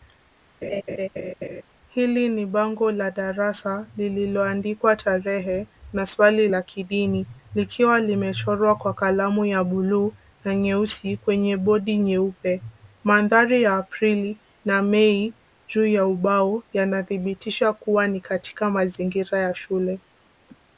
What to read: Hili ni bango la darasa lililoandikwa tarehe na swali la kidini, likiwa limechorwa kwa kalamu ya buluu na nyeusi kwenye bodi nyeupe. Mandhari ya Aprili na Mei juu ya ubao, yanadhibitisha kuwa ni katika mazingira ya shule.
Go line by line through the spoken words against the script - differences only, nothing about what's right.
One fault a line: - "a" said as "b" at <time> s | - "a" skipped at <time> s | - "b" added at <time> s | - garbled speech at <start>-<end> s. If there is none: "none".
none